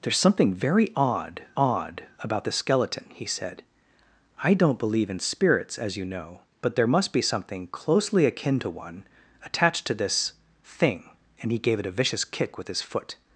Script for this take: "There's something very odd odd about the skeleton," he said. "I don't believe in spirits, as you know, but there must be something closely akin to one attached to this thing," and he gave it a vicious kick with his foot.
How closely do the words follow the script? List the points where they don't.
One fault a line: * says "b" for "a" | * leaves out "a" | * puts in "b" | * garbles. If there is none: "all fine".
all fine